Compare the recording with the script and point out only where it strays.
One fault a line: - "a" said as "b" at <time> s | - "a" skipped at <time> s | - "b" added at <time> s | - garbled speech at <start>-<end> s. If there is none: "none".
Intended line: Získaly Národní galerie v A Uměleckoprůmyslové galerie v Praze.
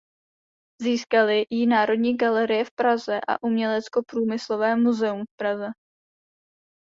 - "ji" added at 1.5 s
- "Praze" added at 2.8 s
- "galerie" said as "muzeum" at 4.8 s